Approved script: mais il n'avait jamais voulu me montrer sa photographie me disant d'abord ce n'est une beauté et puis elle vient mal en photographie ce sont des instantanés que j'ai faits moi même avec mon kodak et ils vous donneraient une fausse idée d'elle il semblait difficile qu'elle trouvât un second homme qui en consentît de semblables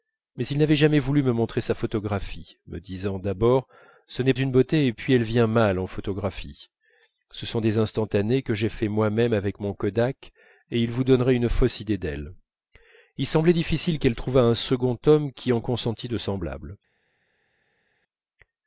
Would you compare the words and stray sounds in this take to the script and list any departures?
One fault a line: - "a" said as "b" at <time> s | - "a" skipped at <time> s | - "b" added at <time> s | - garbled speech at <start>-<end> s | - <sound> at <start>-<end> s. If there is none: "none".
none